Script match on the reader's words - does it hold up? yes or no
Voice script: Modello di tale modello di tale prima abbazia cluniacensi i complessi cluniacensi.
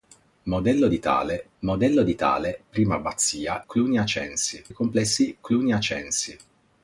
yes